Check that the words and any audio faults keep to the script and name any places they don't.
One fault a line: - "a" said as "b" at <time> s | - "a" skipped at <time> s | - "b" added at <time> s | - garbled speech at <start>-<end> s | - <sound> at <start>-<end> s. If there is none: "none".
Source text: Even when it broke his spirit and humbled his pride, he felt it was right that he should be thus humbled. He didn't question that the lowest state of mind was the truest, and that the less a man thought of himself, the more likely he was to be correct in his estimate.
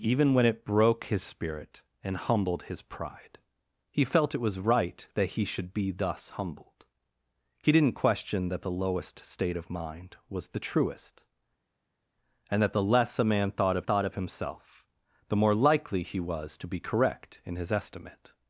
- "thought of" added at 13.8 s